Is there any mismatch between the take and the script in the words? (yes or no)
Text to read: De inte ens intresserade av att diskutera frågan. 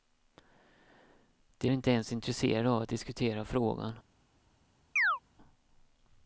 no